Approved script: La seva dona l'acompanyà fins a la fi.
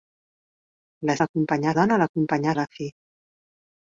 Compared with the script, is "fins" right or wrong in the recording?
wrong